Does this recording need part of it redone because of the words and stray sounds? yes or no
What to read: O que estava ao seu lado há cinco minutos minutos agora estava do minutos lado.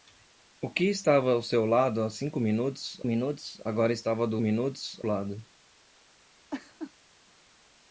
yes